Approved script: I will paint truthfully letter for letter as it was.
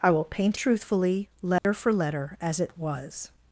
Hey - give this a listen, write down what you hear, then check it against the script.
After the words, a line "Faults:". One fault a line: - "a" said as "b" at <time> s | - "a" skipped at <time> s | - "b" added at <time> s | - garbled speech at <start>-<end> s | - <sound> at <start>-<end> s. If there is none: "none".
I will paint truthfully letter for letter as it was.
Faults:
- dropout at 1.6-1.6 s